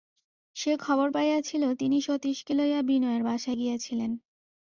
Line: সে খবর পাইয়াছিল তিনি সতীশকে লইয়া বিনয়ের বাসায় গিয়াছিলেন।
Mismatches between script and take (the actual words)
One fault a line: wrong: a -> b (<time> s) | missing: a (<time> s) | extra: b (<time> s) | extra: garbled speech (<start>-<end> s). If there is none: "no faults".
no faults